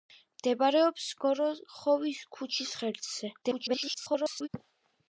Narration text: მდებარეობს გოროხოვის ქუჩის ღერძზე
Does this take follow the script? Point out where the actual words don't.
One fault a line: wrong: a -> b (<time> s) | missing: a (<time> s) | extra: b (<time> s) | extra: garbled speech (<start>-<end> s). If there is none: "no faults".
extra: garbled speech (3.4-4.5 s)